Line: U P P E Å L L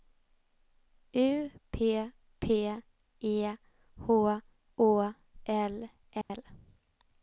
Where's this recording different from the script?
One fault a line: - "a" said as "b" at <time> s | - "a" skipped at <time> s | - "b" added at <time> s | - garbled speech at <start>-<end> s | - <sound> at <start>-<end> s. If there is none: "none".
- "H" added at 3.5 s
- dropout at 6.2-6.3 s